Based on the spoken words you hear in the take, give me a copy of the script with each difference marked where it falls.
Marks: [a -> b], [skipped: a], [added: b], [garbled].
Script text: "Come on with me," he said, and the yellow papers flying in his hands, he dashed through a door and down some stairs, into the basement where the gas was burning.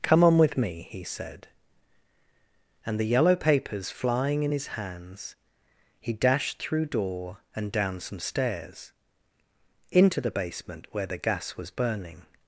"Come on with me," he said, and the yellow papers flying in his hands, he dashed through [skipped: a] door and down some stairs, into the basement where the gas was burning.